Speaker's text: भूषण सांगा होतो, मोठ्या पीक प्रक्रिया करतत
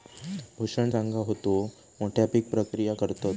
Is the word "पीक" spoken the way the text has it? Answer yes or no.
yes